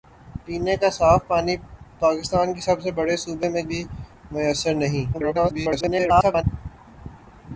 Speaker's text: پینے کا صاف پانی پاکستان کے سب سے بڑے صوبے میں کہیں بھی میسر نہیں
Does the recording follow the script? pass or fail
fail